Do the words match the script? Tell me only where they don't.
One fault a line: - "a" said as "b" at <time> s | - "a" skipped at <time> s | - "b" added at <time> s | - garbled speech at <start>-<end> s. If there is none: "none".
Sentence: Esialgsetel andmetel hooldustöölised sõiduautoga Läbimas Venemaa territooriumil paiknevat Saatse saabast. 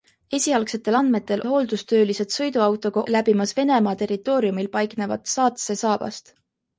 none